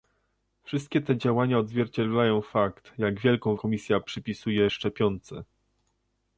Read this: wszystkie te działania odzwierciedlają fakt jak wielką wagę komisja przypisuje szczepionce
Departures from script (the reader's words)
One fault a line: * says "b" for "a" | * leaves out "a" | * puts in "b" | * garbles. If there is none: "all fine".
* leaves out "wagę"